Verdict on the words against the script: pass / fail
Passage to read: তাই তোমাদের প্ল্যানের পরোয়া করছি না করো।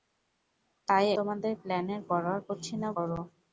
pass